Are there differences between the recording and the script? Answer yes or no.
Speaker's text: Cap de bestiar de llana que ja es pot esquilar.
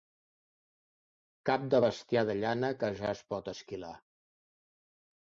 no